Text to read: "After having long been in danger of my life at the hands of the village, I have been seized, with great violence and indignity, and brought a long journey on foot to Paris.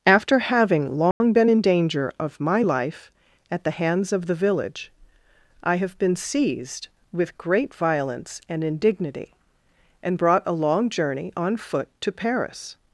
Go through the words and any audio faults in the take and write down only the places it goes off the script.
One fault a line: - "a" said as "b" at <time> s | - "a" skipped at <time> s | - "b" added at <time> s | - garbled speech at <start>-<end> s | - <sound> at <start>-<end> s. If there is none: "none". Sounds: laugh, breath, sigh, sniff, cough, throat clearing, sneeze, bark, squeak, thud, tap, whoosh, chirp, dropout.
- dropout at 1.1-1.2 s